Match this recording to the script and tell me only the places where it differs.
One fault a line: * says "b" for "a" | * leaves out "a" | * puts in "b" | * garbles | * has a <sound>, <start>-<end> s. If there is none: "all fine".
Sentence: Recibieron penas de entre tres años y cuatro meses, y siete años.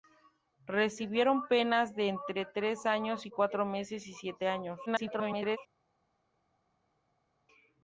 * garbles